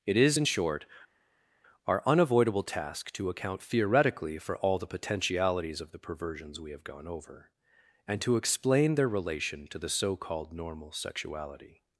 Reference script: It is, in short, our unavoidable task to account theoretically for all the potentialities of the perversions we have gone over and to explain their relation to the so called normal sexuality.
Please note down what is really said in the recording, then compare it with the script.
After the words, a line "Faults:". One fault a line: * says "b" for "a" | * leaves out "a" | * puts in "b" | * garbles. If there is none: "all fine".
It is, in short, our unavoidable task to account theoretically for all the potentialities of the perversions we have gone over and to explain their relation to the so called normal sexuality.
Faults:
all fine